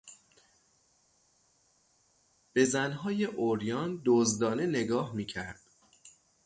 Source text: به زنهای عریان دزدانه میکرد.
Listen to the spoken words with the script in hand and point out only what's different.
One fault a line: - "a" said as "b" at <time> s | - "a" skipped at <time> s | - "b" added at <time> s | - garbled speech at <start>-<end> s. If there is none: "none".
- "نگاه" added at 4.7 s